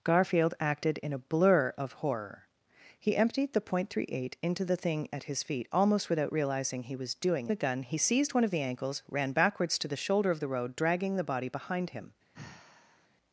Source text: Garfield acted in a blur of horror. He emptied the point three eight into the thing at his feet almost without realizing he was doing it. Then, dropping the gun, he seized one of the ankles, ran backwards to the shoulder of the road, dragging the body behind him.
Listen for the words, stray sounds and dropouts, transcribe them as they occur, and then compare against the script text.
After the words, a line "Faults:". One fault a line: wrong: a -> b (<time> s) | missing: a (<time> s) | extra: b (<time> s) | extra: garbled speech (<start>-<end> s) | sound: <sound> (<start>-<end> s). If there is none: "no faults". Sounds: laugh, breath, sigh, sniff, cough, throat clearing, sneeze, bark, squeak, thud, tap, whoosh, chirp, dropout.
Garfield acted in a blur of horror. He emptied the point three eight into the thing at his feet almost without realizing he was doing the gun, he seized one of the ankles, ran backwards to the shoulder of the road, dragging the body behind him.
Faults:
missing: it Then dropping (7.5 s)
sound: sigh (12.3-13.1 s)